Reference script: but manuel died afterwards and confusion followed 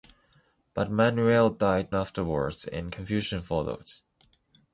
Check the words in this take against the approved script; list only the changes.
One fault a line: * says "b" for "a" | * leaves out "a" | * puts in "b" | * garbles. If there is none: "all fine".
all fine